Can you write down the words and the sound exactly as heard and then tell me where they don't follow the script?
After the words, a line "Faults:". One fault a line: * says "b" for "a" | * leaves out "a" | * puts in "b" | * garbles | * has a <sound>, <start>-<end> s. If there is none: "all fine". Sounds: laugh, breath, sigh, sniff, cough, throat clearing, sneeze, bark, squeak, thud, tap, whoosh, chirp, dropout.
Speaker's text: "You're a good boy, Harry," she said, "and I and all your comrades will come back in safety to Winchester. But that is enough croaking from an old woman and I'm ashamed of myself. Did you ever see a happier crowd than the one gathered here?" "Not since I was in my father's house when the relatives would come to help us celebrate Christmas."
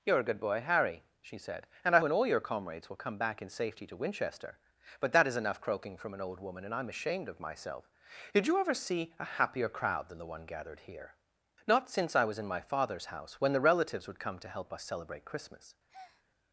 "You're a good boy, Harry," she said, "and I and all your comrades will come back in safety to Winchester. But that is enough croaking from an old woman and I'm ashamed of myself. Did you ever see a happier crowd than the one gathered here?" "Not since I was in my father's house when the relatives would come to help us celebrate Christmas."
Faults:
* has a breath, 15.9-16.2 s